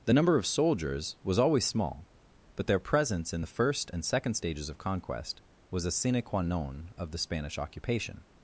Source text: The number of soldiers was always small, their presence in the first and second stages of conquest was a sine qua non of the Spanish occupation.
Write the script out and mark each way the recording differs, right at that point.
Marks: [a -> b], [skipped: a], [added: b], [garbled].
The number of soldiers was always small, [added: but] their presence in the first and second stages of conquest was a sine qua non of the Spanish occupation.